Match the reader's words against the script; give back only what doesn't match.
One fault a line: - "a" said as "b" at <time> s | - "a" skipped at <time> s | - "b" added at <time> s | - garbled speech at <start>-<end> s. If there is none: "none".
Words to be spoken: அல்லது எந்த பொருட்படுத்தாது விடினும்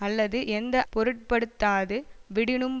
none